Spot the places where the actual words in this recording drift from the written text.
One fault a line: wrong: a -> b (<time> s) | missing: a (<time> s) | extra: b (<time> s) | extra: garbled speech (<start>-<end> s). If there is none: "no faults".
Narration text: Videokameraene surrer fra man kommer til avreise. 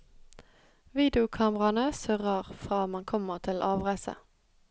no faults